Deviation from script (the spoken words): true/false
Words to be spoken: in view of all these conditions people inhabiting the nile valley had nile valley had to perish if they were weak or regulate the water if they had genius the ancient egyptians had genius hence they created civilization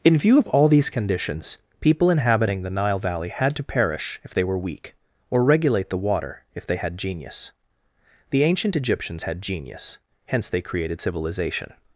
true